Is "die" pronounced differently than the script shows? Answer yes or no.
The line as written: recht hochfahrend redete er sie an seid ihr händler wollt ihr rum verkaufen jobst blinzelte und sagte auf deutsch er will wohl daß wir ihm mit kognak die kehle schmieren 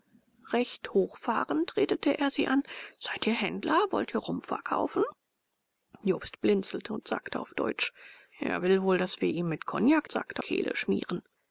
yes